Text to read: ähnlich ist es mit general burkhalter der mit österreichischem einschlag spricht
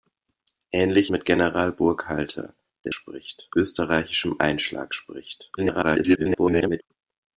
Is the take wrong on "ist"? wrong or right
wrong